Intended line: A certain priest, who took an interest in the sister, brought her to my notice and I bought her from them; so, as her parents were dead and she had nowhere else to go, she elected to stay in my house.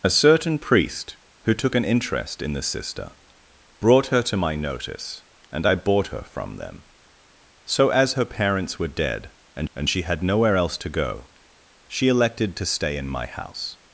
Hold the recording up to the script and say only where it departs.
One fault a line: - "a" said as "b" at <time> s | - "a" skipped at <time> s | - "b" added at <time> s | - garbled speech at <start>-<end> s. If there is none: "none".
- "and" added at 9.7 s